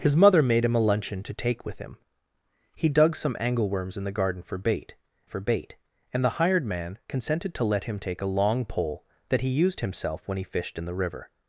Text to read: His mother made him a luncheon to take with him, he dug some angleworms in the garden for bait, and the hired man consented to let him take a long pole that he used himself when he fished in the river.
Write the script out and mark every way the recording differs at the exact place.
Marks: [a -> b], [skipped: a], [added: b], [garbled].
His mother made him a luncheon to take with him, he dug some angleworms in the garden for bait, [added: for bait] and the hired man consented to let him take a long pole that he used himself when he fished in the river.